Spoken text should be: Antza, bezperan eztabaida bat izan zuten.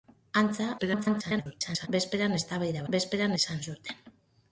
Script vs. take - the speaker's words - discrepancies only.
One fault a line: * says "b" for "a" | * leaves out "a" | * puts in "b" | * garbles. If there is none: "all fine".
* garbles
* says "bezperan" for "bat"